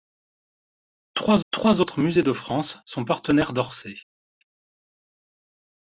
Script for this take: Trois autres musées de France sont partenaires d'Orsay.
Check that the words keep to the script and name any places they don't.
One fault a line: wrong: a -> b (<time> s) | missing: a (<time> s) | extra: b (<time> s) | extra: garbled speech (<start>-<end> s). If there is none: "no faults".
extra: trois (1.5 s)